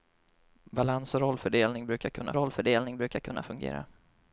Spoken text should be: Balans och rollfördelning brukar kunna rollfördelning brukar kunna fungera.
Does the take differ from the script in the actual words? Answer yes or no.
no